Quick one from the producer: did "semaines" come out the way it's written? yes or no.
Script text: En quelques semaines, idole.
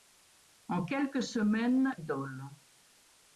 yes